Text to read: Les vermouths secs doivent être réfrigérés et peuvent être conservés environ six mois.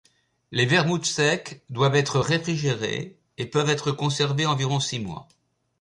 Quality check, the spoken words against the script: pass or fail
pass